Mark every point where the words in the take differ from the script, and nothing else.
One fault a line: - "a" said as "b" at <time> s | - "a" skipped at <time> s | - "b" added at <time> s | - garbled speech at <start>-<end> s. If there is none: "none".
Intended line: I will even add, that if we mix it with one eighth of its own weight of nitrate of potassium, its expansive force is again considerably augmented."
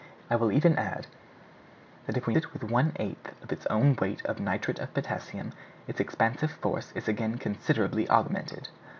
- "mix" skipped at 2.4 s